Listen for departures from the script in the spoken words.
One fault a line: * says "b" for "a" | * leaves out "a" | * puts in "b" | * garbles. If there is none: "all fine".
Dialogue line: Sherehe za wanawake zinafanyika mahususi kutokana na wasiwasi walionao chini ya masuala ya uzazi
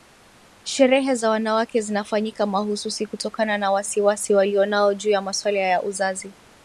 * says "juu" for "chini"